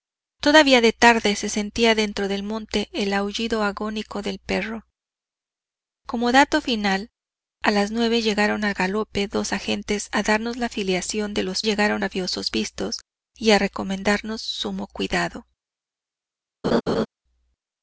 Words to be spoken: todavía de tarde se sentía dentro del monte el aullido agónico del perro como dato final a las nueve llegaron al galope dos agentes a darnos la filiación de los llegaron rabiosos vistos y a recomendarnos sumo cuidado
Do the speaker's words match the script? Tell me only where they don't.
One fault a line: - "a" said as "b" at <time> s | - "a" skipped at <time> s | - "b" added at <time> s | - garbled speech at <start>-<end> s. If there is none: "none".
none